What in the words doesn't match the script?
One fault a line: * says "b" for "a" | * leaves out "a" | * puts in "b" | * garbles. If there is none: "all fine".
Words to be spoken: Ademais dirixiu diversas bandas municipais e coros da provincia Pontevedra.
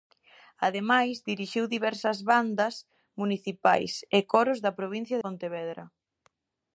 all fine